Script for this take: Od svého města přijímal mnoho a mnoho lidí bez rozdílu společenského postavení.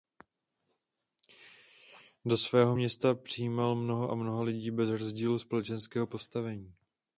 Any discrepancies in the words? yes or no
yes